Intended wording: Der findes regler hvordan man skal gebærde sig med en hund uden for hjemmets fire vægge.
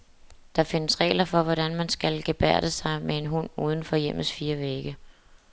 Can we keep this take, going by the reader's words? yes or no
no